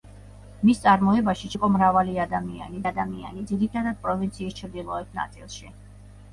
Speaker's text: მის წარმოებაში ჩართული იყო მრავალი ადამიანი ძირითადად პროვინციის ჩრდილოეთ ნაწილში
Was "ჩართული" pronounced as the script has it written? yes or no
no